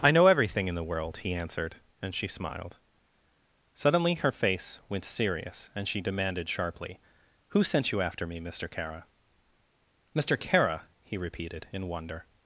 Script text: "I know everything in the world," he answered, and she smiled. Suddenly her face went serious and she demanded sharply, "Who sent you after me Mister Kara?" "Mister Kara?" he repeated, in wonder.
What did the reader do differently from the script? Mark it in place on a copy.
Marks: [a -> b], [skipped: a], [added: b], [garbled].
"I know everything in the world," he answered, and she smiled. Suddenly her face went serious and she demanded sharply, "Who sent you after me Mister Kara?" "Mister Kara?" he repeated, in wonder.